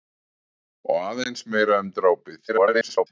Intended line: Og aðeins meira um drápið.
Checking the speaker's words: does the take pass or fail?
fail